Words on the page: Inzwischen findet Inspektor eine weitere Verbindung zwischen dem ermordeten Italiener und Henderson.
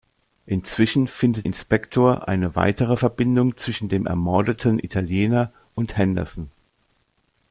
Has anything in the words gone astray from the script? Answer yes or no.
no